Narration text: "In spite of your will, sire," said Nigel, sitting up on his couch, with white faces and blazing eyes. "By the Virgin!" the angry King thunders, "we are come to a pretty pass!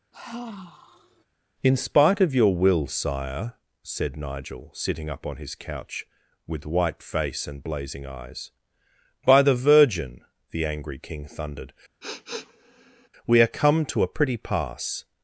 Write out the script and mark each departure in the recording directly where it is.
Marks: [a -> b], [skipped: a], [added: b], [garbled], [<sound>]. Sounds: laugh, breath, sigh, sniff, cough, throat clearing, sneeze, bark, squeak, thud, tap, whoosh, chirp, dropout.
[sigh] "In spite of your will, sire," said Nigel, sitting up on his couch, with white [faces -> face] and blazing eyes. "By the Virgin!" the angry King [thunders, -> thundered] [sniff] "we are come to a pretty pass!